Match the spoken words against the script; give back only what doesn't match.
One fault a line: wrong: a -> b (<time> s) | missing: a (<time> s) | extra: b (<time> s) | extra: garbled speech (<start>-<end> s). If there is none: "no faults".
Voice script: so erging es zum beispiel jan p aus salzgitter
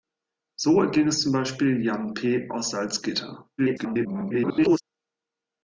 extra: garbled speech (3.6-4.8 s)